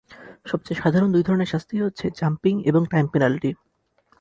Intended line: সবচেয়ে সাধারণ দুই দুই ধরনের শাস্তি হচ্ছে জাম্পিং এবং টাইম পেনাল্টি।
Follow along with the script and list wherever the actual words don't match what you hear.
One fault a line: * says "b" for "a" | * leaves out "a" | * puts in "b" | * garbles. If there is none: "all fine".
* leaves out "দুই"